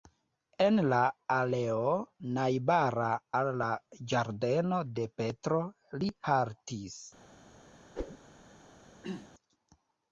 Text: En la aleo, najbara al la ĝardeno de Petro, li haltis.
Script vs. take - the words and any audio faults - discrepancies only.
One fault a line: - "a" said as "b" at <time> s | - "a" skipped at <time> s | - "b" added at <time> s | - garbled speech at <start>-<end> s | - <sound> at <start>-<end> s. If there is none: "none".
- whoosh at 8.0-8.2 s
- throat clearing at 9.0-9.3 s